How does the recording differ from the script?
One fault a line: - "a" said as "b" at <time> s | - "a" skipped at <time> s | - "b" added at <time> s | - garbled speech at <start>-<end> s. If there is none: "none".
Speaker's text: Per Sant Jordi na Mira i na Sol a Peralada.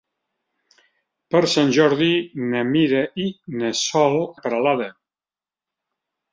none